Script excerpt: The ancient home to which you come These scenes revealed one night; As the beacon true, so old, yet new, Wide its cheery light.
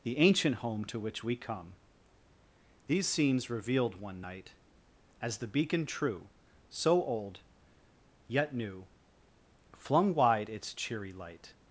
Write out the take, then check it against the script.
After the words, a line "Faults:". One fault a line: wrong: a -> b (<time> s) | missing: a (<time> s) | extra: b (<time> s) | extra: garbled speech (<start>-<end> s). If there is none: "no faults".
The ancient home to which we come These scenes revealed one night; As the beacon true, so old, yet new, Flung wide its cheery light.
Faults:
wrong: you -> we (1.2 s)
extra: Flung (9.7 s)